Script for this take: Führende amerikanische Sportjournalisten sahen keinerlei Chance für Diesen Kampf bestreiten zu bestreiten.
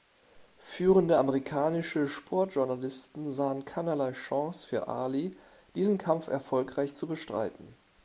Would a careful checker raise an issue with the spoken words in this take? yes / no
yes